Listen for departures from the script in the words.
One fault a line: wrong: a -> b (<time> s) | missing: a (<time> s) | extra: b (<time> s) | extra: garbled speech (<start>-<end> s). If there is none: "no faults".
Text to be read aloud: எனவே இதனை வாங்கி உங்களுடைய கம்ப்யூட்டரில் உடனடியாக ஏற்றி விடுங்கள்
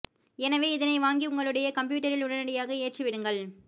no faults